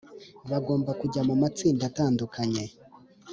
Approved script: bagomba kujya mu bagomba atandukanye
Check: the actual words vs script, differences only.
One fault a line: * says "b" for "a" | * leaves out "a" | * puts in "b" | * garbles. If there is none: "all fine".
* says "matsinda" for "bagomba"